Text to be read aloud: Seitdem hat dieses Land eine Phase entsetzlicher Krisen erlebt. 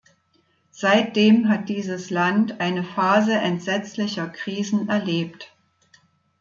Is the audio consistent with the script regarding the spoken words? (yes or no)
yes